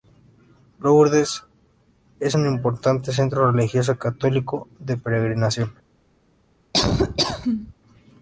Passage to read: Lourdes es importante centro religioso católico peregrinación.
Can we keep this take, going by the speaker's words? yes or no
no